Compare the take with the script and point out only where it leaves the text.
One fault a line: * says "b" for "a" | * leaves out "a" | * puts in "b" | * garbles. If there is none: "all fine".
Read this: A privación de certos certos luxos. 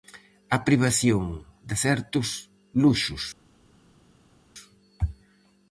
* leaves out "certos"